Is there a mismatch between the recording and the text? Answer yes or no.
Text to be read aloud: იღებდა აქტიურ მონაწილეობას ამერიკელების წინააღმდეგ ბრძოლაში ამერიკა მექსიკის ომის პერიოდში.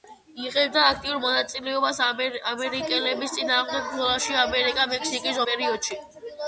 yes